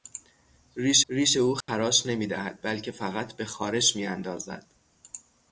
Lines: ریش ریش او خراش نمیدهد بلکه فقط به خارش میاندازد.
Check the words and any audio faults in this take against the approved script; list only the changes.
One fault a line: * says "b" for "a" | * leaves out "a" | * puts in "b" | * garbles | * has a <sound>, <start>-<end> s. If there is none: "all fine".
* has a dropout, 1.6-1.7 s